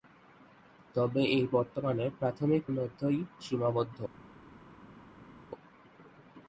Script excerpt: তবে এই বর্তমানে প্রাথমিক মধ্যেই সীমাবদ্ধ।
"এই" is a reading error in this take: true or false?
false